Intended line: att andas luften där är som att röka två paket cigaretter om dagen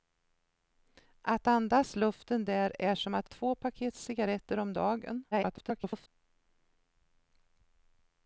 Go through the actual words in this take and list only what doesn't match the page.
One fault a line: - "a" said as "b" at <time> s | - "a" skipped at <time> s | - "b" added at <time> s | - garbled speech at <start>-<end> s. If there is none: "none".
- "röka" skipped at 3.3 s
- garbled speech at 5.3-6.1 s